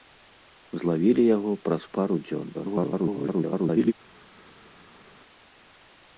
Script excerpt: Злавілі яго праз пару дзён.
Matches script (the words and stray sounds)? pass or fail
fail